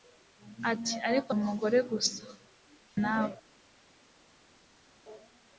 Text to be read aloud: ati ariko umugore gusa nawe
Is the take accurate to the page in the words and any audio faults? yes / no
yes